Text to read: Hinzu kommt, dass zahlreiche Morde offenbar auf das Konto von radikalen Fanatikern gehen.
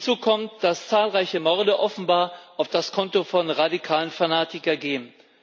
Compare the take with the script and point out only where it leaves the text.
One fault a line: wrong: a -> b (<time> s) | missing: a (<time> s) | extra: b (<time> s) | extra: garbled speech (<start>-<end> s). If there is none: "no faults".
no faults